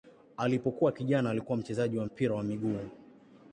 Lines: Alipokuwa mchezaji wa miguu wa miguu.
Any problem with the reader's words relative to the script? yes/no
yes